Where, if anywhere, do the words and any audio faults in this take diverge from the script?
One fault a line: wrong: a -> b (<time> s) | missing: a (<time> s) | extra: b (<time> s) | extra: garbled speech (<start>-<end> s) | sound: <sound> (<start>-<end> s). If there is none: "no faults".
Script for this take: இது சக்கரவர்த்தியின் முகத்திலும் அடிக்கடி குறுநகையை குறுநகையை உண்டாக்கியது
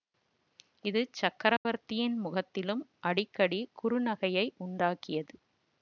sound: dropout (1.6-1.7 s)
missing: குறுநகையை (4.5 s)